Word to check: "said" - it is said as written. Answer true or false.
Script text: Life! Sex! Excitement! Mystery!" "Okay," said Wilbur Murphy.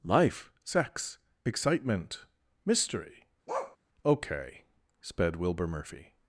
false